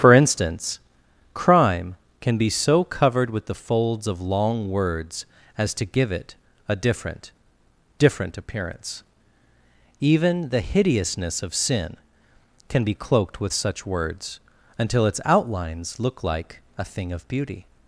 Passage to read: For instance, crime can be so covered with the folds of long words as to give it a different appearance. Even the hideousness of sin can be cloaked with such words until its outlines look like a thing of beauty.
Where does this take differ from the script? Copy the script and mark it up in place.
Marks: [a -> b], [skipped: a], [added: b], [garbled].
For instance, crime can be so covered with the folds of long words as to give it a different [added: different] appearance. Even the hideousness of sin can be cloaked with such words until its outlines look like a thing of beauty.